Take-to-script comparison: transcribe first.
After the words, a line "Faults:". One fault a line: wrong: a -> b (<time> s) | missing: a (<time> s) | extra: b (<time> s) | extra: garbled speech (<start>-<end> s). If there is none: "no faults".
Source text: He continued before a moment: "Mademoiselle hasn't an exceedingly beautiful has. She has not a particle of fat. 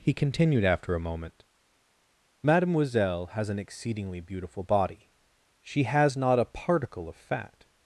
He continued after a moment: "Mademoiselle has an exceedingly beautiful body. She has not a particle of fat.
Faults:
wrong: before -> after (0.6 s)
wrong: hasn't -> has (3.4 s)
wrong: has -> body (4.6 s)